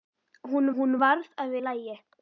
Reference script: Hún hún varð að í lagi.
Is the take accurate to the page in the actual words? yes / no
yes